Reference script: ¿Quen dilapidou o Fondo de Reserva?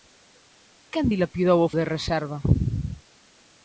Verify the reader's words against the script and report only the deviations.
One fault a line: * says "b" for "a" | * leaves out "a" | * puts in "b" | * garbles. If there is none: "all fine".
* leaves out "Fondo"